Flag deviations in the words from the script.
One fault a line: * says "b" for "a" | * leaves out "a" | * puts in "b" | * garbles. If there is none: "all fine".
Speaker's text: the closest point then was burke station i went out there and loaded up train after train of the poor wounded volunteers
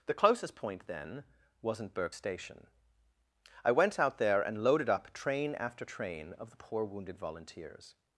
* says "wasn't" for "was"